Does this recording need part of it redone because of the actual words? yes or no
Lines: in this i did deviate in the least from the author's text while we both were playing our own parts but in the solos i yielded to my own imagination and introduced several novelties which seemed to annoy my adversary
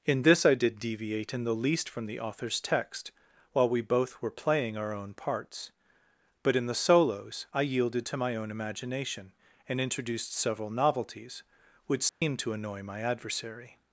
no